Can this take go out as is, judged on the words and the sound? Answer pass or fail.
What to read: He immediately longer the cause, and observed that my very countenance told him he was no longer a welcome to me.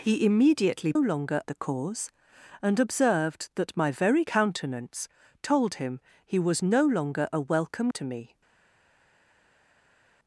pass